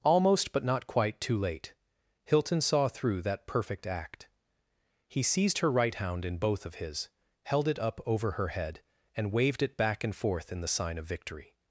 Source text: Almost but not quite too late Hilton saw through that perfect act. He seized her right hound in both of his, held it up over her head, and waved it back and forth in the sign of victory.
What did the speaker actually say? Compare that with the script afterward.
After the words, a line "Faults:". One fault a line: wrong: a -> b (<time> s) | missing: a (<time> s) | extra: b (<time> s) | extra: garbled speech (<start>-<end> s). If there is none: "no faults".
Almost but not quite too late Hilton saw through that perfect act. He seized her right hound in both of his, held it up over her head, and waved it back and forth in the sign of victory.
Faults:
no faults